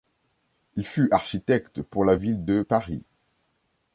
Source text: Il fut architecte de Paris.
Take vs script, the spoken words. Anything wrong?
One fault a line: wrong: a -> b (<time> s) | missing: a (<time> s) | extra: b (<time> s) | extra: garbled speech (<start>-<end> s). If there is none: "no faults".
extra: pour la Ville (1.8 s)